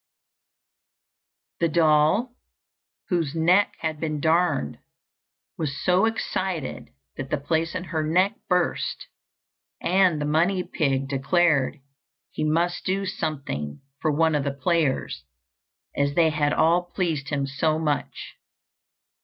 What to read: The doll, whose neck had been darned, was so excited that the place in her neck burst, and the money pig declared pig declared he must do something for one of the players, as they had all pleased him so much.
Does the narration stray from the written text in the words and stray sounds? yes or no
yes